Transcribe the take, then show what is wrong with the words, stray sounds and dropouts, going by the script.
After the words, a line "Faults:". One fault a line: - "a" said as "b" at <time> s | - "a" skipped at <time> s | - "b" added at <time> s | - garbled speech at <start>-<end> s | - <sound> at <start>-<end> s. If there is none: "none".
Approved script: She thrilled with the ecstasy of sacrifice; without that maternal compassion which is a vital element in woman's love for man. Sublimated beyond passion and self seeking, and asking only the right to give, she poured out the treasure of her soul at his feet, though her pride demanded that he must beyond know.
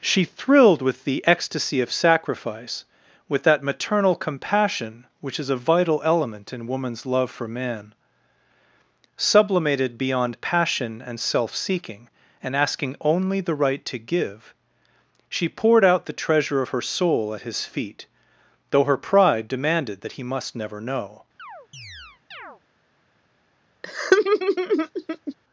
She thrilled with the ecstasy of sacrifice; with that maternal compassion which is a vital element in woman's love for man. Sublimated beyond passion and self seeking, and asking only the right to give, she poured out the treasure of her soul at his feet, though her pride demanded that he must never know.
Faults:
- "without" said as "with" at 3.3 s
- "beyond" said as "never" at 20.6 s
- chirp at 21.4-22.6 s
- laugh at 23.8-25.3 s